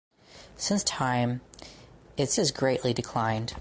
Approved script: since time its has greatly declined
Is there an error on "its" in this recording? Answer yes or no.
no